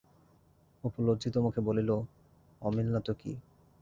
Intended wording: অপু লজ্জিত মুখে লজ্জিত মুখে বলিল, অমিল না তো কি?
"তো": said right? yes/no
yes